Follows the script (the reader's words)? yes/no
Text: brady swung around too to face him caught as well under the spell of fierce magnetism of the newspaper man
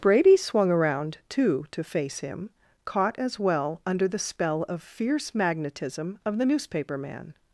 yes